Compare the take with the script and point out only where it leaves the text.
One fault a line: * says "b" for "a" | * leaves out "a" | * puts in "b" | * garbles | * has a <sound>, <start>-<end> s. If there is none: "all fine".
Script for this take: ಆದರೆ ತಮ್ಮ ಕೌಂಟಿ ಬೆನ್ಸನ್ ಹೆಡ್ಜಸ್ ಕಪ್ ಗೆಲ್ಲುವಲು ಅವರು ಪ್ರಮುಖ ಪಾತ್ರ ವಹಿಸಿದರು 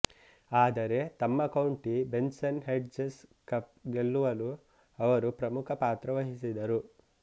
all fine